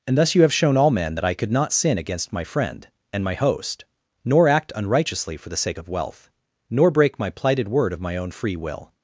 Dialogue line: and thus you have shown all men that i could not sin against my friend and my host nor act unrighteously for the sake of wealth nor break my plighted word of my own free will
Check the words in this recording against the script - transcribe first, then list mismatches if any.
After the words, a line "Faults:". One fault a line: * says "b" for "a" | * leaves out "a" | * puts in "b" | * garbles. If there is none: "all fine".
and thus you have shown all men that i could not sin against my friend and my host nor act unrighteously for the sake of wealth nor break my plighted word of my own free will
Faults:
all fine